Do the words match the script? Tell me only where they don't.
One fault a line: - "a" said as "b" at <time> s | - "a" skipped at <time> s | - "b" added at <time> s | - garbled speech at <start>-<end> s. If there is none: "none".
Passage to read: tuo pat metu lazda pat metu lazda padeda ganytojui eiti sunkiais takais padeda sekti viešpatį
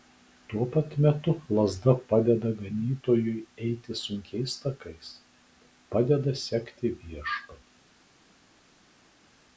- "pat metu lazda" skipped at 1.9 s